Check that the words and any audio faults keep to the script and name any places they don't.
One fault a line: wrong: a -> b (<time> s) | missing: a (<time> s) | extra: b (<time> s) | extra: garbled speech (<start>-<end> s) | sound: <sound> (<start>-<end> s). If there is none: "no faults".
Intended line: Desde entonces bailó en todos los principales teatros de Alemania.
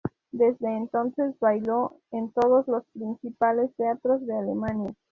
no faults